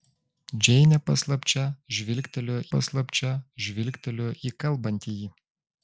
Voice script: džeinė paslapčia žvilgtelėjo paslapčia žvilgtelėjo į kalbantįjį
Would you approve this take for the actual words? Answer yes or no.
yes